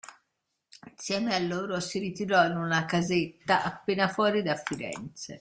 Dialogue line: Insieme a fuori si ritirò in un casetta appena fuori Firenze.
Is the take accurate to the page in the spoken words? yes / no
no